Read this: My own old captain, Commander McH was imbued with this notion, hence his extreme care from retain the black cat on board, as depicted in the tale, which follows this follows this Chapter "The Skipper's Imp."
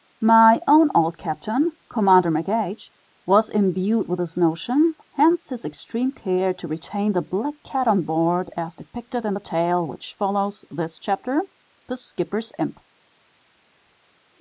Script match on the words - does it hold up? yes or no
no